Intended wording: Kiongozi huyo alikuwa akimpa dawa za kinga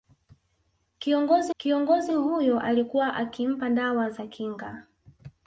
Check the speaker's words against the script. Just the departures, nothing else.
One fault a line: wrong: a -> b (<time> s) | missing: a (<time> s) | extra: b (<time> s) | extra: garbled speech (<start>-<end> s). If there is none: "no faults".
extra: kiongozi (1.6 s)